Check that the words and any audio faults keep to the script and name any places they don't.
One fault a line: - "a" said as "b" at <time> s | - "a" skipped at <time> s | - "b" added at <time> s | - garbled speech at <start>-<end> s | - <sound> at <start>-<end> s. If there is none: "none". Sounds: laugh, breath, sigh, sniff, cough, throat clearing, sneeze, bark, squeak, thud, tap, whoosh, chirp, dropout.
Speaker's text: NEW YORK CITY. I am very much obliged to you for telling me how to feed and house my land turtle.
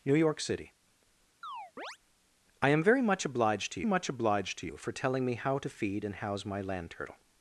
- chirp at 1.4-2.0 s
- "much obliged to" added at 3.8 s